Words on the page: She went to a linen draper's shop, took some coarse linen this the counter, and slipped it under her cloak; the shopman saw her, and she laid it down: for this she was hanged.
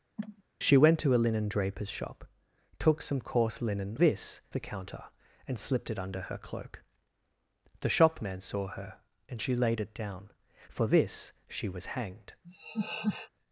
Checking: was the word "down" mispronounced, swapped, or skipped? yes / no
no